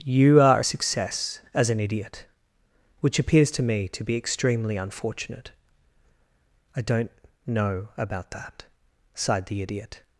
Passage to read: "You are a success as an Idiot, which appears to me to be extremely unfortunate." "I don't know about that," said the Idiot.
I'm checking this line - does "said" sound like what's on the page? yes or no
no